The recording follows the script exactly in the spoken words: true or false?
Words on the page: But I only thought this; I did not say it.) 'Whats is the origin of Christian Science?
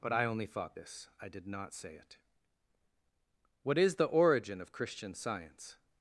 false